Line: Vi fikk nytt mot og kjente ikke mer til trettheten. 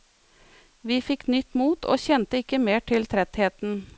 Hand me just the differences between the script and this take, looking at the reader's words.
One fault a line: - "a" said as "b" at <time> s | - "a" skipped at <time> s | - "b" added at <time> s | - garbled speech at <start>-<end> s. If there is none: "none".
none